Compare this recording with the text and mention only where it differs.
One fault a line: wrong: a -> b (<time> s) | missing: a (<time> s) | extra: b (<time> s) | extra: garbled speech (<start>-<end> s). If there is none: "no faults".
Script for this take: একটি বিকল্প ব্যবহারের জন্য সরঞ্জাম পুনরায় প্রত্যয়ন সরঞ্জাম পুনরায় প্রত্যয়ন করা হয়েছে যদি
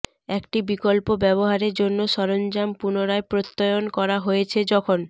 missing: সরঞ্জাম পুনরায় প্রত্যয়ন (3.8 s)
wrong: যদি -> যখন (4.7 s)